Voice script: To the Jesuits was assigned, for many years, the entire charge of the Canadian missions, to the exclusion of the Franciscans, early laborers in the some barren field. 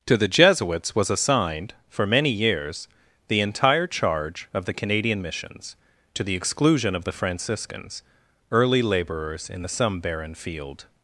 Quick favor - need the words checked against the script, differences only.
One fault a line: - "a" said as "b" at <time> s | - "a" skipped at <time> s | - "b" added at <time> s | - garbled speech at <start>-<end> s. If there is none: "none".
none